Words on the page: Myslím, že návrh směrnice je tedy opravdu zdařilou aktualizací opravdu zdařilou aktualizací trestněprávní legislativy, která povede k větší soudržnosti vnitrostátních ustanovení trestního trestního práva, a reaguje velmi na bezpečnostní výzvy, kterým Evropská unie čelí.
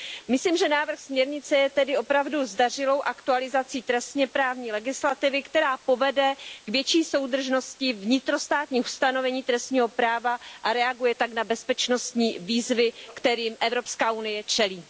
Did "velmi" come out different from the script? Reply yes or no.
yes